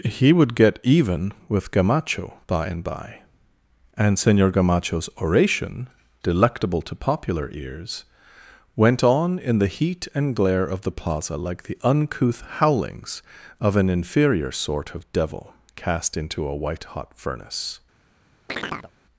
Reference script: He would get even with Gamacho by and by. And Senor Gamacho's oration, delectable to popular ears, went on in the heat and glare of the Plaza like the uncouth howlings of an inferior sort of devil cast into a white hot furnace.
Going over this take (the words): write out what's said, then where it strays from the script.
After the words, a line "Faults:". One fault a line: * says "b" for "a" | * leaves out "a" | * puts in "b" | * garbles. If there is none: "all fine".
He would get even with Gamacho by and by. And Senor Gamacho's oration, delectable to popular ears, went on in the heat and glare of the Plaza like the uncouth howlings of an inferior sort of devil cast into a white hot furnace.
Faults:
all fine